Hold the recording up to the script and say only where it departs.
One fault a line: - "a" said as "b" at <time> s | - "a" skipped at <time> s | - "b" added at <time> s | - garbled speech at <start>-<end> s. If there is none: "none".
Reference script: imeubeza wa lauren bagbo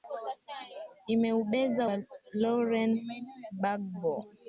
none